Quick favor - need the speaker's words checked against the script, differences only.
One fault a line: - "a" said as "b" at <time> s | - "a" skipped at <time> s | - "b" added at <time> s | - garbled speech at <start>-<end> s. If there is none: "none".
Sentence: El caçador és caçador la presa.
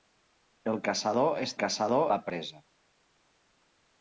none